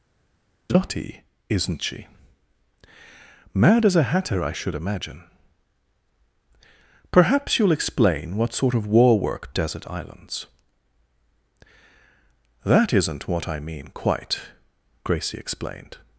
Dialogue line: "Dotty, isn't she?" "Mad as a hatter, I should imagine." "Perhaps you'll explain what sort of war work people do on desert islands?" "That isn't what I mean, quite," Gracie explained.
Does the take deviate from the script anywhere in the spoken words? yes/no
yes